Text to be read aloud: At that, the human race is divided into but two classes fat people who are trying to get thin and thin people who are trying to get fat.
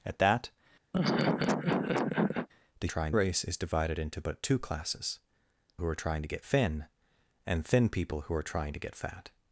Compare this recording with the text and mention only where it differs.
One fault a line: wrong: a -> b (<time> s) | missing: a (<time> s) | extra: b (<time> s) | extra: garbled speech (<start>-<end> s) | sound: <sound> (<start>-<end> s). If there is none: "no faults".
sound: laugh (0.9-2.5 s)
wrong: human -> trying (2.9 s)
missing: fat people (5.2 s)